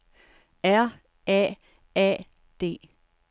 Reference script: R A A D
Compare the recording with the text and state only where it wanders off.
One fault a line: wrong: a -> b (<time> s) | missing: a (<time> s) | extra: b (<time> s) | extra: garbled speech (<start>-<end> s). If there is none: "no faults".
no faults